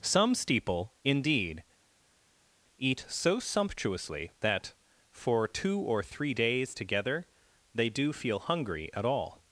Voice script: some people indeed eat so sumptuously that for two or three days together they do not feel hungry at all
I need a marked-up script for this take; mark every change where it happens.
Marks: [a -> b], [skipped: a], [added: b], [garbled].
some [people -> steeple] indeed eat so sumptuously that for two or three days together they do [skipped: not] feel hungry at all